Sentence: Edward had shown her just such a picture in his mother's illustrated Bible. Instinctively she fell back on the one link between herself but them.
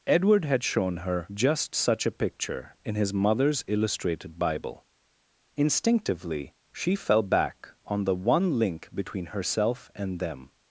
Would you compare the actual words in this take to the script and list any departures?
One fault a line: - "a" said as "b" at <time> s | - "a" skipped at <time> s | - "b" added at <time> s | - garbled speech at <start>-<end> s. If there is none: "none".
- "but" said as "and" at 9.9 s